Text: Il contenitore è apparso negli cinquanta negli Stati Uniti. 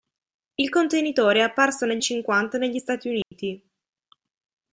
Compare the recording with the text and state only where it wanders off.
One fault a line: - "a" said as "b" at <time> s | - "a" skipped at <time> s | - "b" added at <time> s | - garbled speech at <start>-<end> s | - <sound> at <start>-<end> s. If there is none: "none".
- dropout at 3.2-3.3 s